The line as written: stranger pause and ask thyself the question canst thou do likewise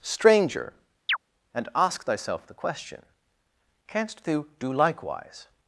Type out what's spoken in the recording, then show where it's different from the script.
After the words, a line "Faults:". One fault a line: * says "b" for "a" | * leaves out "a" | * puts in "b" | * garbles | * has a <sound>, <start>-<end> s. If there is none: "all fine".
stranger and ask thyself the question canst thou do likewise
Faults:
* leaves out "pause"
* has a chirp, 1.1-1.2 s